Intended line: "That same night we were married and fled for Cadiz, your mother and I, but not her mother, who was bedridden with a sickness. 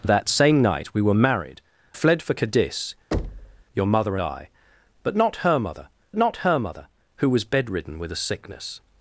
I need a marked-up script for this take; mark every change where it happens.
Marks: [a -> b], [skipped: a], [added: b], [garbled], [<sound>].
"That same night we were married [skipped: and] fled for Cadiz, [thud] your mother [skipped: and] I, but not her mother, [added: not her mother] who was bedridden with a sickness.